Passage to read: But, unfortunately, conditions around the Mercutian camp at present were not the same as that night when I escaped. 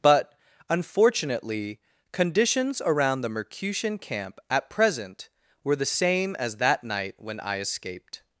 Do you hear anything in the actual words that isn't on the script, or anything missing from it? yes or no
yes